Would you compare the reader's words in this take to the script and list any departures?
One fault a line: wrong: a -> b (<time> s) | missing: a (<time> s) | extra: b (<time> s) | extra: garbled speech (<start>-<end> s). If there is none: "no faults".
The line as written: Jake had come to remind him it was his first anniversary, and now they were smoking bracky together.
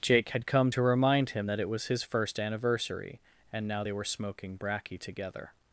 extra: that (1.5 s)